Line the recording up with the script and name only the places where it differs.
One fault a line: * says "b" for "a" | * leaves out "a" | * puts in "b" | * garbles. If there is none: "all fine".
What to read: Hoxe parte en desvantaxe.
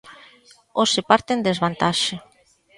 all fine